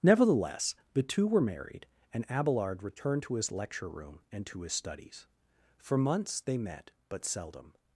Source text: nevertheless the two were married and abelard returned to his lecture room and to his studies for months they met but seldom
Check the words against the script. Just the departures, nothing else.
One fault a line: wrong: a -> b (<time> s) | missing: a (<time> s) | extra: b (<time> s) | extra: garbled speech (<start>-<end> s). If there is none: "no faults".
no faults